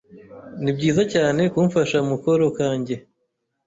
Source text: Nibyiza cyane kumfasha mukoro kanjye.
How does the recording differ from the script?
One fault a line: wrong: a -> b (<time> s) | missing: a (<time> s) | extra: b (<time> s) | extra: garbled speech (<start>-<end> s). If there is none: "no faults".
no faults